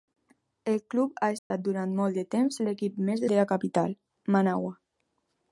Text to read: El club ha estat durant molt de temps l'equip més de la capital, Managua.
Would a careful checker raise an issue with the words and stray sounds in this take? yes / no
yes